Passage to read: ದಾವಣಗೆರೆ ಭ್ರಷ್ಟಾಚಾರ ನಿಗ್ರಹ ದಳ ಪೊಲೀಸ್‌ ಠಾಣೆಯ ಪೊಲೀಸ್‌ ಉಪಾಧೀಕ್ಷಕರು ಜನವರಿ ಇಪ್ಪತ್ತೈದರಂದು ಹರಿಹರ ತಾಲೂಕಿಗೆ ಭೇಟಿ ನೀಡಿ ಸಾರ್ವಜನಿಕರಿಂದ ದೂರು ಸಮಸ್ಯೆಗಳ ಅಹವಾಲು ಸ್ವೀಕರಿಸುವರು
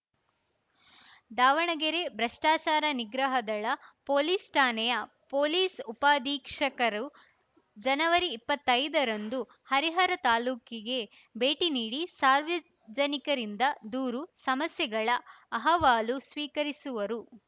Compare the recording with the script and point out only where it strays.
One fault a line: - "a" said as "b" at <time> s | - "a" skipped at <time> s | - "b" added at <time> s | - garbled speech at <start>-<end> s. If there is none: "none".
none